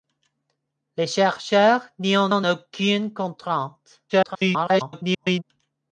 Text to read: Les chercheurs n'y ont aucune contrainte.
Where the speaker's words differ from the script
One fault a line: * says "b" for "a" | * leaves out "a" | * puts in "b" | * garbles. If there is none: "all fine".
* puts in "ont"
* garbles